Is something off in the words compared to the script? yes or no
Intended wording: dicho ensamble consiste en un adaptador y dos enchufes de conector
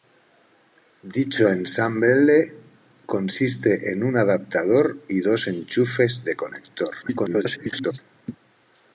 yes